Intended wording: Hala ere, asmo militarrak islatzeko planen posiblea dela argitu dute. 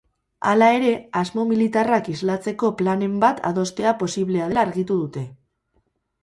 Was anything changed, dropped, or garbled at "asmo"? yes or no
no